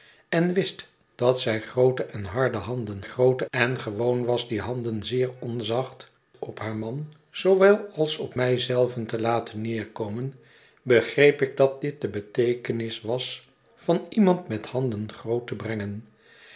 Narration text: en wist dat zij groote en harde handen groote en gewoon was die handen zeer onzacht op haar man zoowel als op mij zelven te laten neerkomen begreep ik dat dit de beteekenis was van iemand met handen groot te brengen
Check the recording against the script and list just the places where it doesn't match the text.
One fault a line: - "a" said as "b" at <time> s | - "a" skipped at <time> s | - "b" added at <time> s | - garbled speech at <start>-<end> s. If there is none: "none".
none